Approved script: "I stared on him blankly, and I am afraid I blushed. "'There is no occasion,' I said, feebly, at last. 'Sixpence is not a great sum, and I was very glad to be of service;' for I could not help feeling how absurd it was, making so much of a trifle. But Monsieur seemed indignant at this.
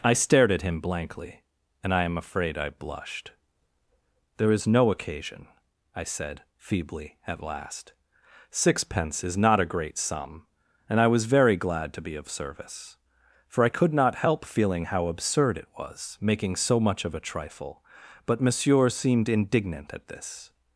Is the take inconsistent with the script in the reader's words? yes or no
yes